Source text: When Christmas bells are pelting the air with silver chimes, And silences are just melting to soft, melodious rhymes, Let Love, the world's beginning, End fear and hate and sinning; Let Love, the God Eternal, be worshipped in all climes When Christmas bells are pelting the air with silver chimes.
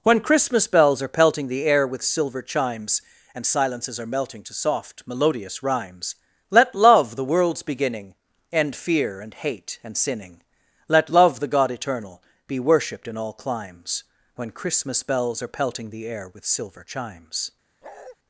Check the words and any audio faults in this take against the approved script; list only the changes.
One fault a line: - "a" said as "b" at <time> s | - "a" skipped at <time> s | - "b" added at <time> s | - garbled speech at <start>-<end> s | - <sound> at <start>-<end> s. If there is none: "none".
- "just" skipped at 4.1 s
- bark at 17.8-18.2 s